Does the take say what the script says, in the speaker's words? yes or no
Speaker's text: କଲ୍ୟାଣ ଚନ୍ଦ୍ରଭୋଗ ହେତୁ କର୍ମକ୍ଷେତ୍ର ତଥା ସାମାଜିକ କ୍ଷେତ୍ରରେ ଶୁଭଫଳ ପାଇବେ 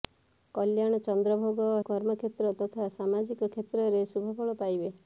no